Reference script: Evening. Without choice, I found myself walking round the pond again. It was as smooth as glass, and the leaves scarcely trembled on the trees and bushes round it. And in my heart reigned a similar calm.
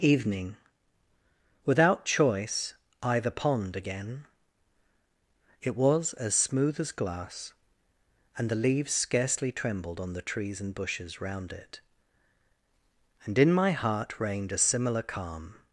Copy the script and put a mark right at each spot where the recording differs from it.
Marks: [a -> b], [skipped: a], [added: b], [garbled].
Evening. Without choice, I [skipped: found myself walking round] the pond again. It was as smooth as glass, and the leaves scarcely trembled on the trees and bushes round it. And in my heart reigned a similar calm.